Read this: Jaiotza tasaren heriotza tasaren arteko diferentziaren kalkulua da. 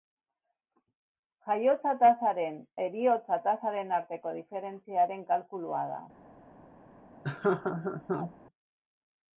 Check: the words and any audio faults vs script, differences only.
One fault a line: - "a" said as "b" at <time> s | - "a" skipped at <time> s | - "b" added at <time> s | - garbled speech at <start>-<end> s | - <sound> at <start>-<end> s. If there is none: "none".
- laugh at 7.2-8.3 s